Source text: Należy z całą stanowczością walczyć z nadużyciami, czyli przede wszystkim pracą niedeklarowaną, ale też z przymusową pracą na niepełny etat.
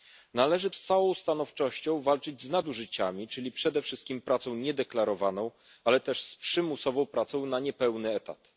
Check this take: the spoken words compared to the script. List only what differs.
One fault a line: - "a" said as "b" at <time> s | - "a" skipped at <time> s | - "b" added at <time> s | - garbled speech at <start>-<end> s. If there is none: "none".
none